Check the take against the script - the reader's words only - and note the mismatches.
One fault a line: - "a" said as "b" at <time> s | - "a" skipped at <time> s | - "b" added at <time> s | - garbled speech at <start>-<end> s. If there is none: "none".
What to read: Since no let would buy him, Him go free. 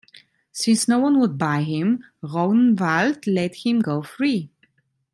- "let" said as "one" at 1.0 s
- "Rognvald let" added at 2.2 s